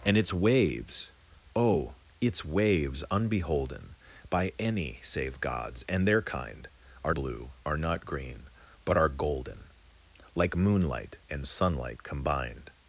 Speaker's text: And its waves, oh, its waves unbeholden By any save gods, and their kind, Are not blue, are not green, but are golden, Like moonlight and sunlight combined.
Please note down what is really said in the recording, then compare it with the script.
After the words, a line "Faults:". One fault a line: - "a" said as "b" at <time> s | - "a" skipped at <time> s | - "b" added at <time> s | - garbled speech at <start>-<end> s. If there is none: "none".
And its waves, oh, its waves unbeholden By any save gods, and their kind, Are blue, are not green, but are golden, Like moonlight and sunlight combined.
Faults:
- "not" skipped at 7.1 s